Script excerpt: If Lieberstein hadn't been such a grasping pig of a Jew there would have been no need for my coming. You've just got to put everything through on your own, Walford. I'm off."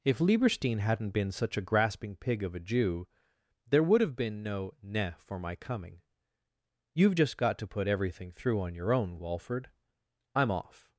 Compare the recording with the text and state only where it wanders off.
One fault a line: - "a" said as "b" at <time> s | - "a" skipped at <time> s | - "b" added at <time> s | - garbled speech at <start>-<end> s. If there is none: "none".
- "need" said as "ne" at 4.8 s